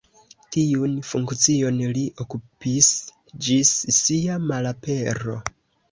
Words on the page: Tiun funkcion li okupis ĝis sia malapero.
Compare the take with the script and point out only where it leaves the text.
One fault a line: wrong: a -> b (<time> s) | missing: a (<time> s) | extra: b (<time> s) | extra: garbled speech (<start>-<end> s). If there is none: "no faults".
no faults